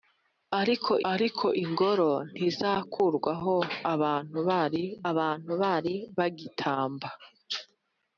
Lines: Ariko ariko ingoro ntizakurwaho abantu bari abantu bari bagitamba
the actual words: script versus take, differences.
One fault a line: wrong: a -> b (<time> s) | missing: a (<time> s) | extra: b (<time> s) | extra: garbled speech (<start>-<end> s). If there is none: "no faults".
no faults